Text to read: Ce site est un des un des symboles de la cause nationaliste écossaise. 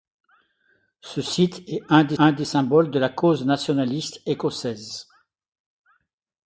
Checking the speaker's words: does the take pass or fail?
pass